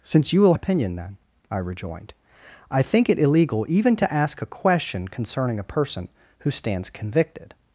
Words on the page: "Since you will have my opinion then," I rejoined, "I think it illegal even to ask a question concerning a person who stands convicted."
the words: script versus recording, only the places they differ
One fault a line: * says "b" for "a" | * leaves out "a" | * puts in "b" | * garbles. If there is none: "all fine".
* leaves out "have my"